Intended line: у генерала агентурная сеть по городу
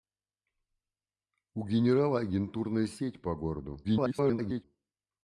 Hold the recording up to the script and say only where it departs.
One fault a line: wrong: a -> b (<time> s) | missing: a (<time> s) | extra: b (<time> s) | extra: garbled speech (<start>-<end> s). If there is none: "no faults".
extra: garbled speech (3.8-4.6 s)